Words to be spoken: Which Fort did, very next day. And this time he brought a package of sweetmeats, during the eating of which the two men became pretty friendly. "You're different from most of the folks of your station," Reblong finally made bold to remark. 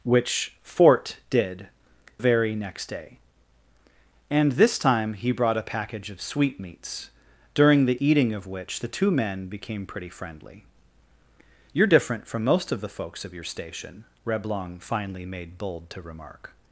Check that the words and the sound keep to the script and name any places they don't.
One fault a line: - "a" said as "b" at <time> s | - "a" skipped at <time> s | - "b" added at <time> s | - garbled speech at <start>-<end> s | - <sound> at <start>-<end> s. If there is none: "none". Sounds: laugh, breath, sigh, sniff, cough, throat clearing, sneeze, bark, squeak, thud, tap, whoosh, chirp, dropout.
none